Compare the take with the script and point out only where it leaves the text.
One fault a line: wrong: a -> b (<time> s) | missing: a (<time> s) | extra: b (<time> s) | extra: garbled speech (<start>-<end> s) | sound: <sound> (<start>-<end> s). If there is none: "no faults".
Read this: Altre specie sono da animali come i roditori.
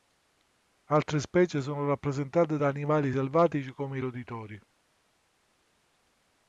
extra: rappresentate (1.9 s)
extra: selvatici (3.1 s)